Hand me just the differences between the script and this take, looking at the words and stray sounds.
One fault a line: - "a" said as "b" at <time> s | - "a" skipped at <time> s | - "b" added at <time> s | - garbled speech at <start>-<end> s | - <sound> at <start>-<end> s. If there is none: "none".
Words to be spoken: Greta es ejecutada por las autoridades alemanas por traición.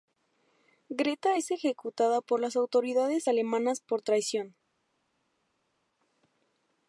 none